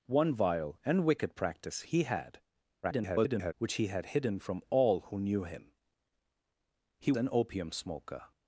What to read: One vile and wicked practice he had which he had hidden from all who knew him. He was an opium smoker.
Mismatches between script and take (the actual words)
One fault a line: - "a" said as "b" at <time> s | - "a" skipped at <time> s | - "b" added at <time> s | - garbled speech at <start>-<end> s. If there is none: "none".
- garbled speech at 2.8-3.5 s
- "was" skipped at 7.1 s